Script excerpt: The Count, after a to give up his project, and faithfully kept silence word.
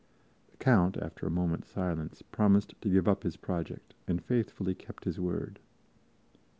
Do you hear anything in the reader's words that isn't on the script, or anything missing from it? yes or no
yes